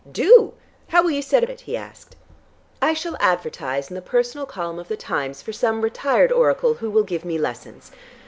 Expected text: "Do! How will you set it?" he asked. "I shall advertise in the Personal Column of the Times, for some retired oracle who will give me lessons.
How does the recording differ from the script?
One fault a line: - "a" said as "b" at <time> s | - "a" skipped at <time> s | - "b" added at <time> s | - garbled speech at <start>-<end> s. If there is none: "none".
none